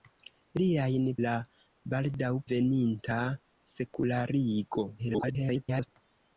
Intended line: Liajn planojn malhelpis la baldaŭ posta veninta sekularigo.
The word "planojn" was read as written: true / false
false